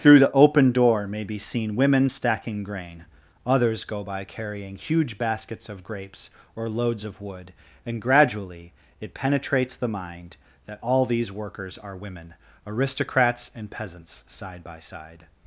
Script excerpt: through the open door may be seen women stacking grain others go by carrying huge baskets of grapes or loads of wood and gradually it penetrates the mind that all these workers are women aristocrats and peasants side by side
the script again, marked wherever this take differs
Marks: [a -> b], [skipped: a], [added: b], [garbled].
through the open door may be seen women stacking grain others go by carrying huge baskets of grapes or loads of wood and gradually it penetrates the mind that all these workers are women aristocrats and peasants side by side